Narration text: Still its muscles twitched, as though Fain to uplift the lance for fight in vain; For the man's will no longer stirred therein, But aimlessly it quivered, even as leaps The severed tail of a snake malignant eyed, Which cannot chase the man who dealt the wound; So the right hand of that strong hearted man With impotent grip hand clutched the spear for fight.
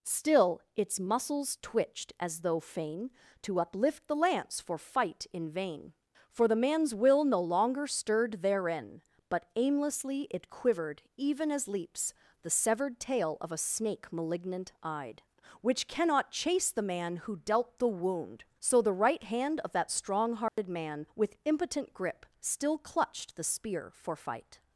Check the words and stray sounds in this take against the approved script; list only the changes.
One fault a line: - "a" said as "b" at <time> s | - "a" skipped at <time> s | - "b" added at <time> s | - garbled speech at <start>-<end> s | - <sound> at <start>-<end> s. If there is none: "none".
- dropout at 20.5-20.6 s
- "hand" said as "still" at 22.4 s